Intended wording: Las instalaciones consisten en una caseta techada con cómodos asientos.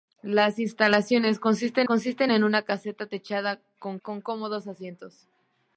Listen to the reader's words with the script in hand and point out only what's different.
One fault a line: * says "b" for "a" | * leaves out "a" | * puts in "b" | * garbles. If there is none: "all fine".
* puts in "consisten"
* puts in "con"